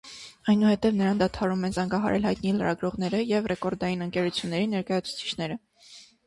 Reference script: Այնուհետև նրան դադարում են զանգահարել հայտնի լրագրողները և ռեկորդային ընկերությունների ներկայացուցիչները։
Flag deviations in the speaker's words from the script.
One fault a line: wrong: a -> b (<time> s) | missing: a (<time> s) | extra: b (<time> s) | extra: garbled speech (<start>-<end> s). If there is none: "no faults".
no faults